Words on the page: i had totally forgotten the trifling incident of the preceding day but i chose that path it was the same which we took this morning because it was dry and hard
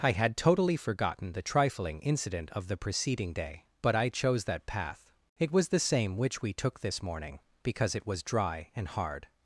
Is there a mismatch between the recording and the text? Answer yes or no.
no